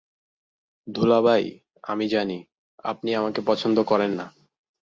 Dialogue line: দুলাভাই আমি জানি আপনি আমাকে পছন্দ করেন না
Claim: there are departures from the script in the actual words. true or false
false